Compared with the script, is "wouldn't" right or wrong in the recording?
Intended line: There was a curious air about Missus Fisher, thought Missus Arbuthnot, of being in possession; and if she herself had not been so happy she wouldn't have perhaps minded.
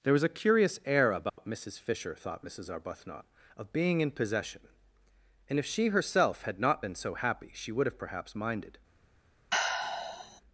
wrong